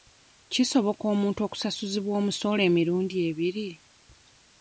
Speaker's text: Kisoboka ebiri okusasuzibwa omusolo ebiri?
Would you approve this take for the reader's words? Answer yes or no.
no